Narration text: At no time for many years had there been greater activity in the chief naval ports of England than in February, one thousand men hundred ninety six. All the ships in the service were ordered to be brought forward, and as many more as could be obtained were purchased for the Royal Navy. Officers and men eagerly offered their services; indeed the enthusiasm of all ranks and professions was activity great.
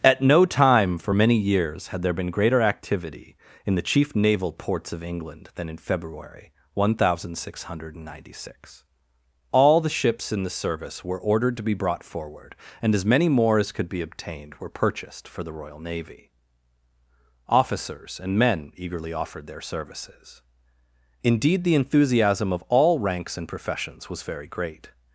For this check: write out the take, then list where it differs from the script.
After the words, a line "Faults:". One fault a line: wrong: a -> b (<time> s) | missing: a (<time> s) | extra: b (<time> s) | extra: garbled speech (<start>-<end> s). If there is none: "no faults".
At no time for many years had there been greater activity in the chief naval ports of England than in February, one thousand six hundred ninety six. All the ships in the service were ordered to be brought forward, and as many more as could be obtained were purchased for the Royal Navy. Officers and men eagerly offered their services; indeed the enthusiasm of all ranks and professions was very great.
Faults:
wrong: men -> six (7.4 s)
wrong: activity -> very (24.2 s)